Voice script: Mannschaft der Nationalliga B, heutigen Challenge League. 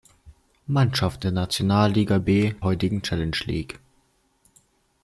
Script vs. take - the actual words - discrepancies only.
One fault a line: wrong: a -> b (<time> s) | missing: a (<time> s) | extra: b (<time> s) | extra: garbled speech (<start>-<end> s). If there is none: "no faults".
no faults